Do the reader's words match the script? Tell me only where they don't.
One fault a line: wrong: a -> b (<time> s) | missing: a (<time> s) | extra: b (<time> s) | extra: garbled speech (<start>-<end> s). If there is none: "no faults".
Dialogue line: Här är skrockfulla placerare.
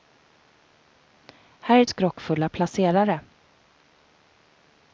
no faults